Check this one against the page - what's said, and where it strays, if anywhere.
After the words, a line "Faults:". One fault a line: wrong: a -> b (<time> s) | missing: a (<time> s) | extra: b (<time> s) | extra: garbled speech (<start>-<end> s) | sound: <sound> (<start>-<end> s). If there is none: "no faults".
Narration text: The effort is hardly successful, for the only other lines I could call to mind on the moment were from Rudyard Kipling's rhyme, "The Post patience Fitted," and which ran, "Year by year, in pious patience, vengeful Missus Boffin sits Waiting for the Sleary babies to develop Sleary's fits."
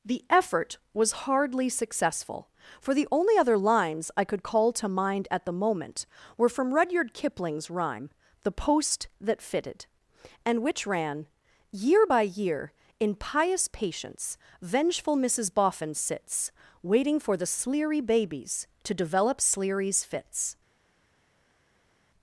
The effort was hardly successful, for the only other lines I could call to mind at the moment were from Rudyard Kipling's rhyme, "The Post that Fitted," and which ran, "Year by year, in pious patience, vengeful Missus Boffin sits Waiting for the Sleary babies to develop Sleary's fits."
Faults:
wrong: is -> was (0.9 s)
wrong: on -> at (5.3 s)
wrong: patience -> that (9.2 s)